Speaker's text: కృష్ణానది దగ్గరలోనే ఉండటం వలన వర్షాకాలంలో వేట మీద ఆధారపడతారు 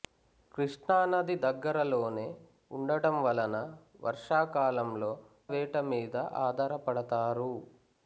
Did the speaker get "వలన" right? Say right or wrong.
right